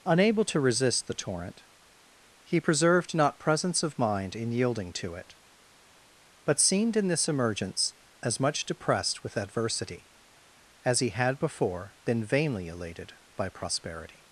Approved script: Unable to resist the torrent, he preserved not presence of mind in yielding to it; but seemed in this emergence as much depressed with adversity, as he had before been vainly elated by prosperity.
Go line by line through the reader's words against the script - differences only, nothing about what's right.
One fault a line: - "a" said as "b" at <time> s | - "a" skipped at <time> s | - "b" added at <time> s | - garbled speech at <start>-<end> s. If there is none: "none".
none